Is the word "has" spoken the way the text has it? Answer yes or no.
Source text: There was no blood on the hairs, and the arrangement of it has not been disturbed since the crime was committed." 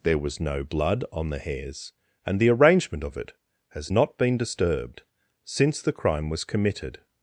yes